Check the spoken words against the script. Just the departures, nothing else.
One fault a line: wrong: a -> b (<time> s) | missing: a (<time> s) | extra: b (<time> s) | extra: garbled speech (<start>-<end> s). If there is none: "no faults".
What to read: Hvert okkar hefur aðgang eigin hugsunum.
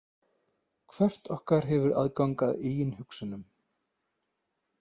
extra: að (2.5 s)